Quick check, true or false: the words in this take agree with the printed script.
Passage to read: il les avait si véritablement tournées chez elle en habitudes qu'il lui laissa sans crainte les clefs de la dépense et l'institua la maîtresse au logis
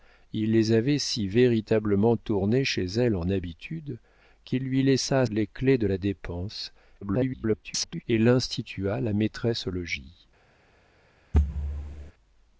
false